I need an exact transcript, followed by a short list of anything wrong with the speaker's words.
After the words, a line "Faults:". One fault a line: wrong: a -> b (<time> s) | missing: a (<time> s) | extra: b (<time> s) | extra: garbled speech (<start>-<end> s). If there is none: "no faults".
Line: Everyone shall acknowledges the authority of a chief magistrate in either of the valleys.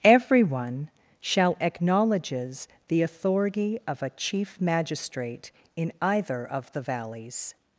Everyone shall acknowledges the authority of a chief magistrate in either of the valleys.
Faults:
no faults